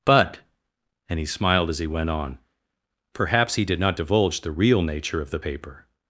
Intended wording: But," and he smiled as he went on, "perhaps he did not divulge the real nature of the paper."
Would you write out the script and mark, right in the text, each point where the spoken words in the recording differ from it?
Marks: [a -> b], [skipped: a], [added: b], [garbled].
But," and he smiled as he went on, "perhaps he did not divulge the real nature of the paper."